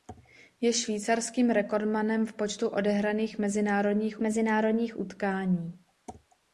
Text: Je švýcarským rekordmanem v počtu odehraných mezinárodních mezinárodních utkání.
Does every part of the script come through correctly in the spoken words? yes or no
yes